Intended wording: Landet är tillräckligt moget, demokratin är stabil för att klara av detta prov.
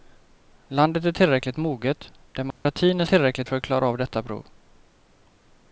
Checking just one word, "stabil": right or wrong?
wrong